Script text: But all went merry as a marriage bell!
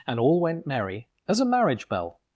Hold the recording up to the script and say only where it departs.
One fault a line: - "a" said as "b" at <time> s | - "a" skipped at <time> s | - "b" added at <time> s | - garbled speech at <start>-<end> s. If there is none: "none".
- "But" said as "And" at 0.1 s